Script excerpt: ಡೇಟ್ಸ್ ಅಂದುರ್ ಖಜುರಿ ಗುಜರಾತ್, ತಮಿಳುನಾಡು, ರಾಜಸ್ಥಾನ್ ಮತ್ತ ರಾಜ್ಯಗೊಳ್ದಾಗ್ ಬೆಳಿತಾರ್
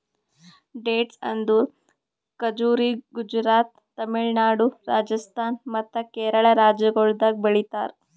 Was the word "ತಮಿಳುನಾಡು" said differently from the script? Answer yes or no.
no